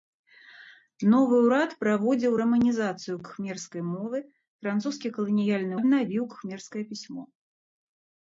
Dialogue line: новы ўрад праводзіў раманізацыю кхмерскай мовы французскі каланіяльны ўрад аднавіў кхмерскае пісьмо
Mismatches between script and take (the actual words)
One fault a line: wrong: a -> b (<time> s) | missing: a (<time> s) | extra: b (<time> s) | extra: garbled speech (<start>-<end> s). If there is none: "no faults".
missing: ўрад (5.7 s)